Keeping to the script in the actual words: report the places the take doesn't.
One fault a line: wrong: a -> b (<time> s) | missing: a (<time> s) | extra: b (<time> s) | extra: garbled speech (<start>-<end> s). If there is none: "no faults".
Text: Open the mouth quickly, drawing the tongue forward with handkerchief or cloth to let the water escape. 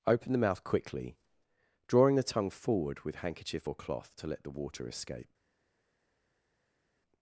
no faults